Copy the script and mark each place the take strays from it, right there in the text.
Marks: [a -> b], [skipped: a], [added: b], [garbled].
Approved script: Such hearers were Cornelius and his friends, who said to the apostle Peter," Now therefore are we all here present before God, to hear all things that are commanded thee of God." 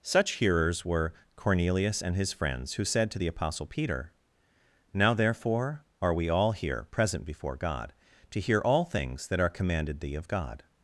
Such hearers were Cornelius and his friends, who said to the apostle Peter," Now therefore are we all here present before God, to hear all things that are commanded thee of God."